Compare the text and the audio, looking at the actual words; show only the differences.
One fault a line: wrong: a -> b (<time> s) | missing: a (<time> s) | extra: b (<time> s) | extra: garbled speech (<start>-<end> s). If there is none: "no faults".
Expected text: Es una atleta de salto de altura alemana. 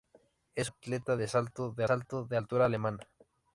wrong: una atleta -> atleta de salto (0.6 s)